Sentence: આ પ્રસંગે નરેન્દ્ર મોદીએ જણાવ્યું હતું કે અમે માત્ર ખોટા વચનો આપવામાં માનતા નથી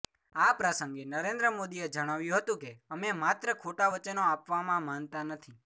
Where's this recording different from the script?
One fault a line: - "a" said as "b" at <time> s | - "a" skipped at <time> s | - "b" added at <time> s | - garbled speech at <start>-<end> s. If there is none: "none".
none